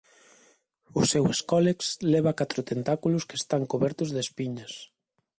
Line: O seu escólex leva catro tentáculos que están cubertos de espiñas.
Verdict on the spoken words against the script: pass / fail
pass